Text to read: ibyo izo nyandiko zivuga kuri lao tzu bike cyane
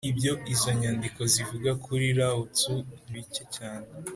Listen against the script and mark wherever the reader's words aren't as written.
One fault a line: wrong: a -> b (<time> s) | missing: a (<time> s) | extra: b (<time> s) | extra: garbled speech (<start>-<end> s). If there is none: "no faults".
no faults